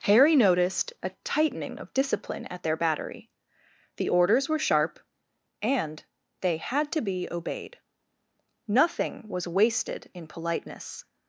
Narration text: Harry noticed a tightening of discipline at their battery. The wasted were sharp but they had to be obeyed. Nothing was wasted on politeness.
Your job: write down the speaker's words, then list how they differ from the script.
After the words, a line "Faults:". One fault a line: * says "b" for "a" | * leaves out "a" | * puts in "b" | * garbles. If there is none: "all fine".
Harry noticed a tightening of discipline at their battery. The orders were sharp and they had to be obeyed. Nothing was wasted in politeness.
Faults:
* says "orders" for "wasted"
* says "and" for "but"
* says "in" for "on"